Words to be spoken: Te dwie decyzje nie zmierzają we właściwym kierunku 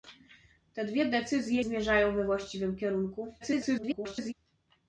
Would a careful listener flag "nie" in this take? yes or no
yes